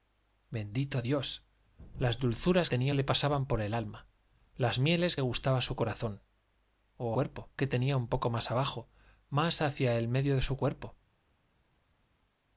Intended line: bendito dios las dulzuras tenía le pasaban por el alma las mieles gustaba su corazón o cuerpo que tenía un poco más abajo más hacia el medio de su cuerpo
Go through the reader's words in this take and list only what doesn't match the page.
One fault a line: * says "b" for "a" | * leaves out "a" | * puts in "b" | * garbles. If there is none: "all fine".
all fine